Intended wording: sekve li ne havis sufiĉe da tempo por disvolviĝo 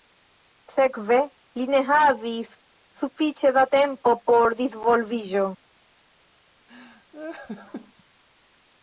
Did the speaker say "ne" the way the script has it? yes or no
yes